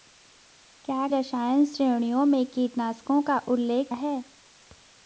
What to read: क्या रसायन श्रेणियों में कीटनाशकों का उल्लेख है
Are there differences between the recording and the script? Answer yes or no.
no